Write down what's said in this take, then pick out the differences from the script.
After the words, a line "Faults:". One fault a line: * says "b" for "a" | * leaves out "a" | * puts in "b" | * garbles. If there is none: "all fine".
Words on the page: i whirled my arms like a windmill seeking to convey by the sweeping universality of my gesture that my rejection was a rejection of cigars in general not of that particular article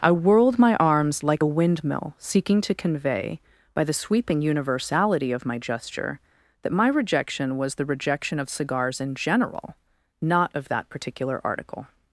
i whirled my arms like a windmill seeking to convey by the sweeping universality of my gesture that my rejection was the rejection of cigars in general not of that particular article
Faults:
* says "the" for "a"